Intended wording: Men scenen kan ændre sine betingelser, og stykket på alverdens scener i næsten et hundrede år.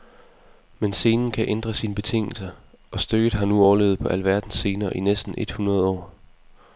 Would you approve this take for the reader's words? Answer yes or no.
no